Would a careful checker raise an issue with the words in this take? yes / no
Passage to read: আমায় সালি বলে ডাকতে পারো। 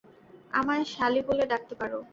no